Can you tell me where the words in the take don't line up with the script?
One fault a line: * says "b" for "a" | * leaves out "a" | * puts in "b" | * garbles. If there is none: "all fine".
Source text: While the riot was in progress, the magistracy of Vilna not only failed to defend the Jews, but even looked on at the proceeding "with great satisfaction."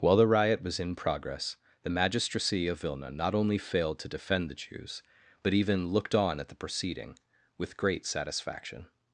all fine